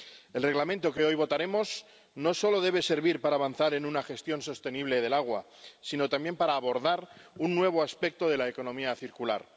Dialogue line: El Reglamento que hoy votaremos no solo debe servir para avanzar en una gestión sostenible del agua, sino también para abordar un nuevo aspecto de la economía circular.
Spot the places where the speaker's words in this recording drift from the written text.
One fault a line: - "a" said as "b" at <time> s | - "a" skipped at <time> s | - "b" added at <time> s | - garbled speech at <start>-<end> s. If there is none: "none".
none